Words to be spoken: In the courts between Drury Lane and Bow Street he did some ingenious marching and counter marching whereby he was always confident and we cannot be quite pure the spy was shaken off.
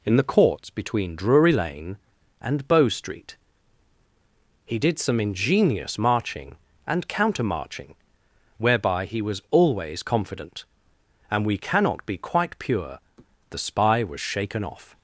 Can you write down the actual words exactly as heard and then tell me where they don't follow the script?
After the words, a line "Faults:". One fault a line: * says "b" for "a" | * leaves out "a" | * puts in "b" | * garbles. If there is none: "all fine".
In the courts between Drury Lane and Bow Street he did some ingenious marching and counter marching whereby he was always confident and we cannot be quite pure the spy was shaken off.
Faults:
all fine